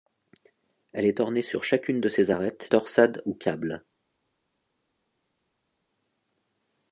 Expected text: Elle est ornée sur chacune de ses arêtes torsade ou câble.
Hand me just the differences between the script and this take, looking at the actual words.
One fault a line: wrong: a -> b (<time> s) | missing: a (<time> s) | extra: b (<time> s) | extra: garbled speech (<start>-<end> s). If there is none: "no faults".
no faults